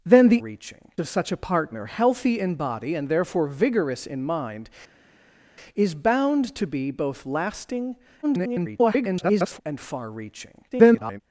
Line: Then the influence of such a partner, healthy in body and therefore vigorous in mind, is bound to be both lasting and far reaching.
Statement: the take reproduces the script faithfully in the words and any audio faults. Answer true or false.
false